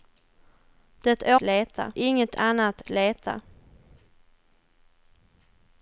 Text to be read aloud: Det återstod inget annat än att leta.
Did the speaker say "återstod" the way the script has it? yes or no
no